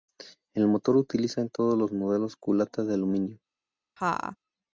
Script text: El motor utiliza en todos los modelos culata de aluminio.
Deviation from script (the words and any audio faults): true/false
true